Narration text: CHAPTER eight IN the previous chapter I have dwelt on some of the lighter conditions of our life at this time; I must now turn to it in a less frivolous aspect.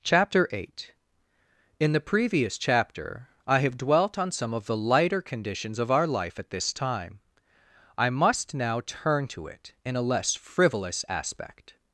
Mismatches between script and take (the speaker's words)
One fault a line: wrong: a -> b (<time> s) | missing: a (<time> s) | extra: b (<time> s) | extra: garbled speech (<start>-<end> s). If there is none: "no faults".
no faults